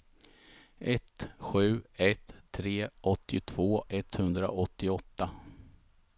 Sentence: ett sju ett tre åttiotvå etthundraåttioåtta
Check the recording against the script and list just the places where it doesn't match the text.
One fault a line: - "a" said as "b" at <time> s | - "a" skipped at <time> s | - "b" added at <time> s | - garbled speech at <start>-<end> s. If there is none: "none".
none